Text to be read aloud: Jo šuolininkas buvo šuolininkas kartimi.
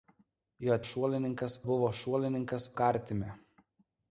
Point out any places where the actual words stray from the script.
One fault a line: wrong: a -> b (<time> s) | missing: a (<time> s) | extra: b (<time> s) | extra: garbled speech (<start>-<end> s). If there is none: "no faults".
no faults